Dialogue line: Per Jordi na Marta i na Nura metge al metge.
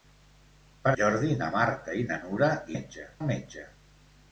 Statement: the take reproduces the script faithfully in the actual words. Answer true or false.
true